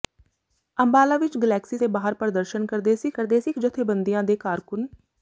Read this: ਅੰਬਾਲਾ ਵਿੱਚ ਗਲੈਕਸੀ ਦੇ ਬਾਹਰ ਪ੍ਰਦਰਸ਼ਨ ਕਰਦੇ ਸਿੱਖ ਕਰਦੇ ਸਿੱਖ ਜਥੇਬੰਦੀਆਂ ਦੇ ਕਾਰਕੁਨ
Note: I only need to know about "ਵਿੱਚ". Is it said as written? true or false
true